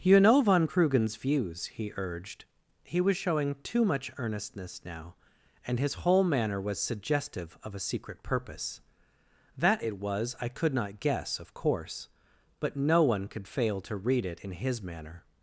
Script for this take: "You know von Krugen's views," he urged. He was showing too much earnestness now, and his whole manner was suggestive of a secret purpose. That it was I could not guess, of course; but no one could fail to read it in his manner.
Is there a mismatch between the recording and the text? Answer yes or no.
no